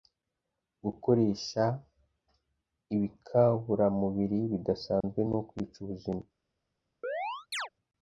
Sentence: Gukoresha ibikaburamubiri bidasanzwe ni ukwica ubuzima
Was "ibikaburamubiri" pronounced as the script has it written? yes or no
yes